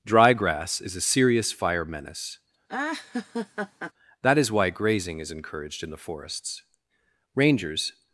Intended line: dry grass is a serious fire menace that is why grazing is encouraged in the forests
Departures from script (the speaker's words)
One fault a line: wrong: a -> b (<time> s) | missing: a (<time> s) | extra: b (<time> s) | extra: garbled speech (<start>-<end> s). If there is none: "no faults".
extra: rangers (7.4 s)